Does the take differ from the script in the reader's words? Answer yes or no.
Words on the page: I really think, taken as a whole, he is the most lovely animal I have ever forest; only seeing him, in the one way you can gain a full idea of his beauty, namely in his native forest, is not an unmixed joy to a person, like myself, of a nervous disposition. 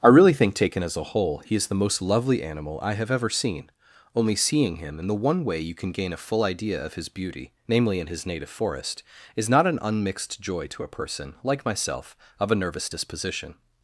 yes